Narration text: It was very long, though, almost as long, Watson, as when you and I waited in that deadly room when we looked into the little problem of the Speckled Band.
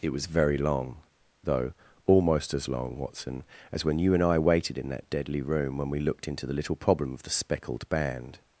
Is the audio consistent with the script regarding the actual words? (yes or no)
yes